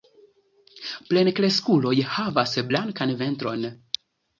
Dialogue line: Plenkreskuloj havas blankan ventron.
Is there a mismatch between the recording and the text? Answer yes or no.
no